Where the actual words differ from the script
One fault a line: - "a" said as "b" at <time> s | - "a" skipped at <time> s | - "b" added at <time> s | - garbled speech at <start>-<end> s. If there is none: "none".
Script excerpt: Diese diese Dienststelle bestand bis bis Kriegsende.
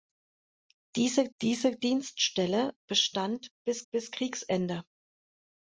none